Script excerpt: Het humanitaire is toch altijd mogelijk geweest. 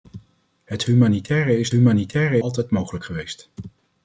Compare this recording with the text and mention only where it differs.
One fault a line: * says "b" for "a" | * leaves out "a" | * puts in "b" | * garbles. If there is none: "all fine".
* says "humanitaire" for "toch"